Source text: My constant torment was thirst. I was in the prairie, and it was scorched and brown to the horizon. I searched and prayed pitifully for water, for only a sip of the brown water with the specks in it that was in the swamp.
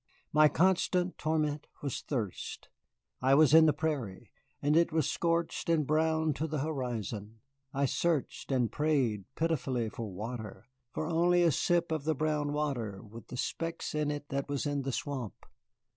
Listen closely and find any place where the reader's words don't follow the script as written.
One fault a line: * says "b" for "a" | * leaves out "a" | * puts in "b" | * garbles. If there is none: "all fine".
all fine